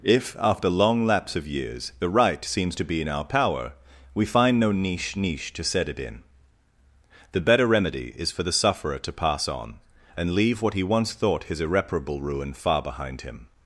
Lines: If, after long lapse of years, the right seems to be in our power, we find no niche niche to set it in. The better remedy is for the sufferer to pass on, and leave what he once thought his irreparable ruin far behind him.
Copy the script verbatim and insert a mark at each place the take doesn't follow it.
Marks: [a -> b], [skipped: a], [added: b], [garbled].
If, after long lapse of years, the right seems to be in our power, we find no niche niche to set it in. The better remedy is for the sufferer to pass on, and leave what he once thought his irreparable ruin far behind him.